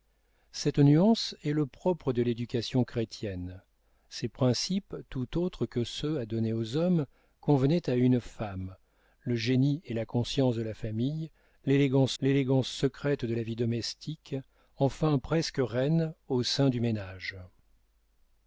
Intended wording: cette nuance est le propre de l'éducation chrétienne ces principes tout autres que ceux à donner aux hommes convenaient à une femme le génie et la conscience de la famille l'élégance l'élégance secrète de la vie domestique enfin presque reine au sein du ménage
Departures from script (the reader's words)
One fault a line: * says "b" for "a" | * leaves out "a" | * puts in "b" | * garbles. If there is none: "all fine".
all fine